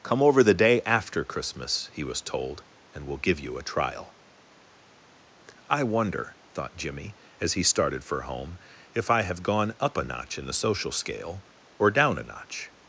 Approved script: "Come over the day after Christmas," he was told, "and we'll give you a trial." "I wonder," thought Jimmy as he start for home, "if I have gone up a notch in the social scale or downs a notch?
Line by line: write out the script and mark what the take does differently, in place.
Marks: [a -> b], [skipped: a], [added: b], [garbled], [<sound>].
"Come over the day after Christmas," he was told, "and we'll give you a trial." "I wonder," thought Jimmy as he [start -> started] for home, "if I have gone up a notch in the social scale or [downs -> down] a notch?